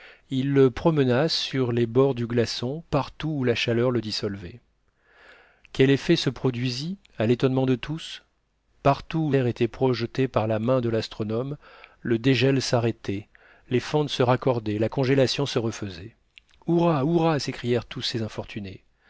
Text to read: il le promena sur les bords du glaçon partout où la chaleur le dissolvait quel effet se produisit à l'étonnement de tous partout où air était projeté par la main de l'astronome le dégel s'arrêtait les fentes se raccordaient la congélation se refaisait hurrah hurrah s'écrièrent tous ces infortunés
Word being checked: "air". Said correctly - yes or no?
yes